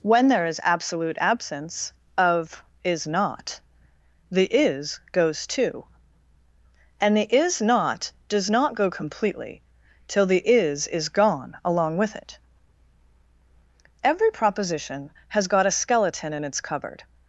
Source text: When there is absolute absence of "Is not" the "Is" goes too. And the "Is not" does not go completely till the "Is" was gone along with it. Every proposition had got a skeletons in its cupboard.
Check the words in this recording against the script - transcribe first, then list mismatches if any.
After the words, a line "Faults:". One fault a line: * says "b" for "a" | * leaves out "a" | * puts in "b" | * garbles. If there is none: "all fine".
When there is absolute absence of "Is not" the "Is" goes too. And the "Is not" does not go completely till the "Is" is gone along with it. Every proposition has got a skeleton in its cupboard.
Faults:
* says "is" for "was"
* says "has" for "had"
* says "skeleton" for "skeletons"